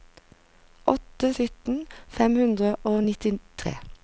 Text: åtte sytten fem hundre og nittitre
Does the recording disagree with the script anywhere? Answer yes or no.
no